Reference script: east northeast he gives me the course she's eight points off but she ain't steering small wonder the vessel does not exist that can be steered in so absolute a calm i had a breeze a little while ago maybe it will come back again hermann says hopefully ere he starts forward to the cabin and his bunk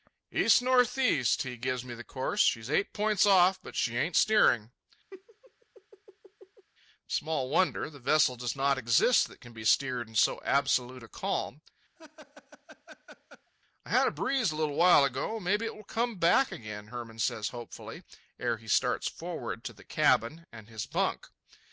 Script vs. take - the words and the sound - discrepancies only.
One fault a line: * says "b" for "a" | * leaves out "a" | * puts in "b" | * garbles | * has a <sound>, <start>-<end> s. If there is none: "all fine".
* has a laugh, 5.1-6.7 s
* has a laugh, 12.0-13.5 s